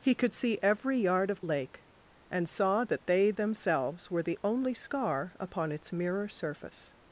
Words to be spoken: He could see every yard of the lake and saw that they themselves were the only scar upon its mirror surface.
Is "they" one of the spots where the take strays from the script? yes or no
no